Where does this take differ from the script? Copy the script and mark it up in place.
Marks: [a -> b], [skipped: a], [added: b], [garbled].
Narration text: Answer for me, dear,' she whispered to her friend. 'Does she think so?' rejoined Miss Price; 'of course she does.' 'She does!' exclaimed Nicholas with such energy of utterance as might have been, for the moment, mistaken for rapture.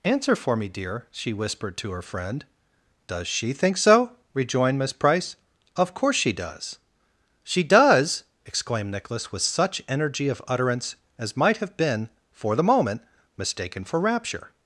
Answer for me, dear,' she whispered to her friend. 'Does she think so?' rejoined Miss Price; 'of course she does.' 'She does!' exclaimed Nicholas with such energy of utterance as might have been, for the moment, mistaken for rapture.